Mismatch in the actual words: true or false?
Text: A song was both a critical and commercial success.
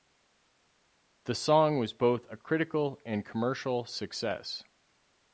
true